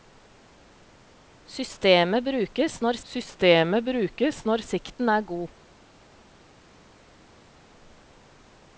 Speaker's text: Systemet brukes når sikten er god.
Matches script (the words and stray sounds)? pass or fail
fail